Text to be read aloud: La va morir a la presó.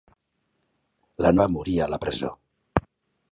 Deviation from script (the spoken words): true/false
false